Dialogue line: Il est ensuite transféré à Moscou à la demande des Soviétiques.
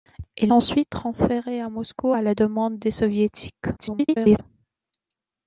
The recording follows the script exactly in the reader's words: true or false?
false